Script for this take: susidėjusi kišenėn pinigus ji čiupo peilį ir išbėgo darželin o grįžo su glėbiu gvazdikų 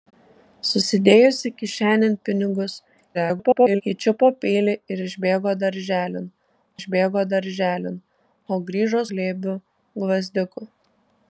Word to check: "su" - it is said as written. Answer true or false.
false